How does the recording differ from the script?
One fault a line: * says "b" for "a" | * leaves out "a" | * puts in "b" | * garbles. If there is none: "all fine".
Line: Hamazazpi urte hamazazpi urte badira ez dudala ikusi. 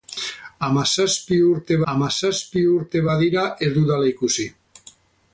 all fine